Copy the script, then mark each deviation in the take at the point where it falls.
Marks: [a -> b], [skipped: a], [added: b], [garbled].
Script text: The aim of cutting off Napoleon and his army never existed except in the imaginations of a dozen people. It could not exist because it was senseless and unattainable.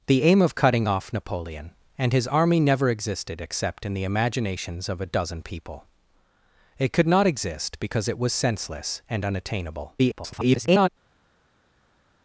The aim of cutting off Napoleon and his army never existed except in the imaginations of a dozen people. It could not exist because it was senseless and unattainable. [garbled]